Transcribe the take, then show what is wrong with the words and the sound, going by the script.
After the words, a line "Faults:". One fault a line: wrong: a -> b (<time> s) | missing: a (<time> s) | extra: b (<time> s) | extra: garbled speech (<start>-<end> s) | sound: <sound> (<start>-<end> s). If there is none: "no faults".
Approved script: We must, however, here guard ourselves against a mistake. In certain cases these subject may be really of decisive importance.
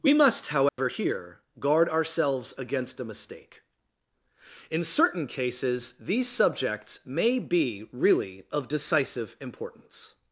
We must, however, here guard ourselves against a mistake. In certain cases these subjects may be really of decisive importance.
Faults:
sound: dropout (0.7-0.8 s)
wrong: subject -> subjects (6.3 s)